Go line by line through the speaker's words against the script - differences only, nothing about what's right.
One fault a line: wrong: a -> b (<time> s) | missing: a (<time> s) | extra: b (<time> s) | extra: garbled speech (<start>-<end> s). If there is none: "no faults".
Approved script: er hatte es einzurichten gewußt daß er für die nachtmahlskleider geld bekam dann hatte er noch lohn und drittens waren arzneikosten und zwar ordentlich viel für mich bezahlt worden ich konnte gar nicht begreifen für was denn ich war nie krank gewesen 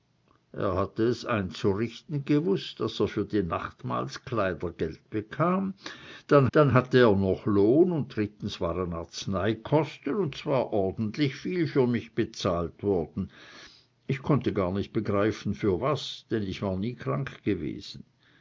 extra: dann (6.5 s)